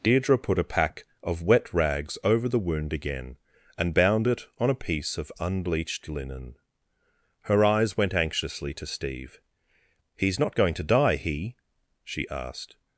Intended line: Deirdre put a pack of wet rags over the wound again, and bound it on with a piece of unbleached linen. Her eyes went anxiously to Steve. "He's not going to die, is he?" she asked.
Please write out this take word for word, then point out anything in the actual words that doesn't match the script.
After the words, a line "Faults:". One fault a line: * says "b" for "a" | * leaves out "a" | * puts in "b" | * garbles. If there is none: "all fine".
Deirdre put a pack of wet rags over the wound again, and bound it on a piece of unbleached linen. Her eyes went anxiously to Steve. "He's not going to die, he?" she asked.
Faults:
* leaves out "with"
* leaves out "is"